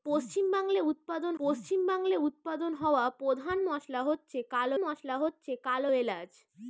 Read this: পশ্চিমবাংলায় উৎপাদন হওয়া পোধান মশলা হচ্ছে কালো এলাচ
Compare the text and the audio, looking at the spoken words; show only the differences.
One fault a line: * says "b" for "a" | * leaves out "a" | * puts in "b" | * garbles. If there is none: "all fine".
* puts in "পশ্চিমবাংলায় উৎপাদন"
* puts in "মশলা হচ্ছে কালো"